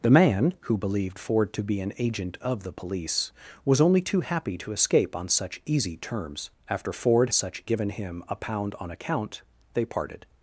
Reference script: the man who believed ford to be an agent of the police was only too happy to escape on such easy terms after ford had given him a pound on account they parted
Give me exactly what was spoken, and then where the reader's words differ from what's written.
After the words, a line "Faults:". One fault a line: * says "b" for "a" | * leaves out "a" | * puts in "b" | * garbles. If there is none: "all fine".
the man who believed ford to be an agent of the police was only too happy to escape on such easy terms after ford such given him a pound on account they parted
Faults:
* says "such" for "had"